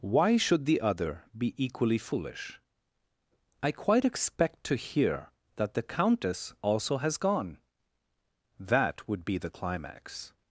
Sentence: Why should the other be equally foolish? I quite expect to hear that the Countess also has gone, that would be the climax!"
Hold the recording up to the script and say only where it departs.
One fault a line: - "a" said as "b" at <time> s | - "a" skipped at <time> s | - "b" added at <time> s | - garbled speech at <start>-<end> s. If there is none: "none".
none